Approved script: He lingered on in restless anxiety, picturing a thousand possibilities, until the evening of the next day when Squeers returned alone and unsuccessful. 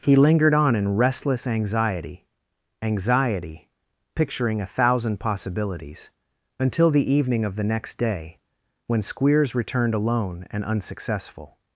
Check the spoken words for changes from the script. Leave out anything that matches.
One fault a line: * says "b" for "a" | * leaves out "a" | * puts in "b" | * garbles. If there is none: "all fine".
* puts in "anxiety"